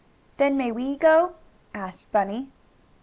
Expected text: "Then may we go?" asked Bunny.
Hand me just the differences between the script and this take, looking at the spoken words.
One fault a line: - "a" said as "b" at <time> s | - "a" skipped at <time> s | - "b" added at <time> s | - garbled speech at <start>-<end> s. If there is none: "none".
none